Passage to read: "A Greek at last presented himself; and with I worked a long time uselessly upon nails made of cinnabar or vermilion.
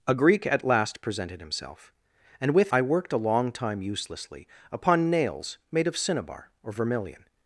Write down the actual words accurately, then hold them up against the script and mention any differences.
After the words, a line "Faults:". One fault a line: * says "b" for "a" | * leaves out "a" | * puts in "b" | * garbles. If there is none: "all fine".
"A Greek at last presented himself; and with I worked a long time uselessly upon nails made of cinnabar or vermilion.
Faults:
all fine